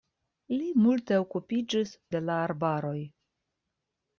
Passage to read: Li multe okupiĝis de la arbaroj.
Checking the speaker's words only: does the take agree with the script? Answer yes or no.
yes